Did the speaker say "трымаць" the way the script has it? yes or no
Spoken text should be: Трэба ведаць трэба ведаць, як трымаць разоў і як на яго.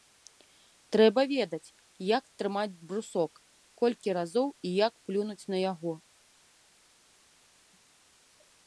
no